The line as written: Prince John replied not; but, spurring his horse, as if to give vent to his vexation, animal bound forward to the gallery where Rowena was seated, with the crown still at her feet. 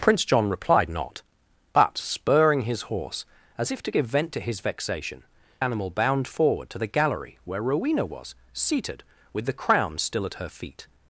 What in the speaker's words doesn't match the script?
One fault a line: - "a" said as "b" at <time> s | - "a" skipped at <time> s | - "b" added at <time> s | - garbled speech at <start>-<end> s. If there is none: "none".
none